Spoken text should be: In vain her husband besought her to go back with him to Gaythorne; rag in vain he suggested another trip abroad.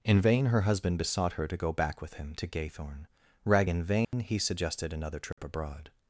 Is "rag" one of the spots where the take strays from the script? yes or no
no